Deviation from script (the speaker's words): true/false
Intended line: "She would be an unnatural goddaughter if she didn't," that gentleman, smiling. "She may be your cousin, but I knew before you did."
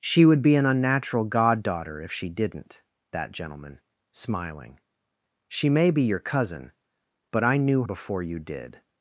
false